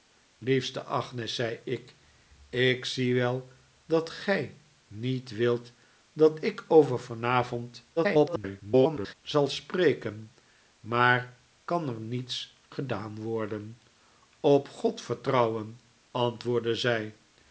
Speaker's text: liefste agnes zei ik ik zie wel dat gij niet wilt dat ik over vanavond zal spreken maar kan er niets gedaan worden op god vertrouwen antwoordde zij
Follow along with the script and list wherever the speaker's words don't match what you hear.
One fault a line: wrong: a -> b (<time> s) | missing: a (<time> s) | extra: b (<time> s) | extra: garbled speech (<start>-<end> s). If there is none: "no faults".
extra: garbled speech (8.0-9.1 s)